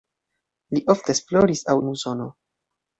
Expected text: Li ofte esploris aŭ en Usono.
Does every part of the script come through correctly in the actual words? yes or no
yes